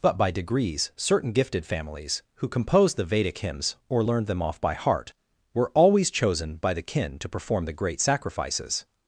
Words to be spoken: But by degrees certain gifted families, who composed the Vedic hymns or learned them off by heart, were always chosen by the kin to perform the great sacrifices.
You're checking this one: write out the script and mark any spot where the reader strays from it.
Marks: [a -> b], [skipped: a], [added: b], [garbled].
But by degrees certain gifted families, who composed the Vedic hymns or learned them off by heart, were always chosen by the kin to perform the great sacrifices.